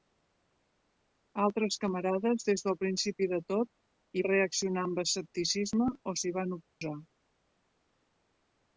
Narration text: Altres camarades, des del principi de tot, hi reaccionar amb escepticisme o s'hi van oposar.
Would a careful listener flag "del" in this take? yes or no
no